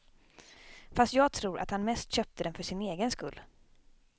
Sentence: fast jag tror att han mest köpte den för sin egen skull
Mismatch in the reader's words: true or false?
false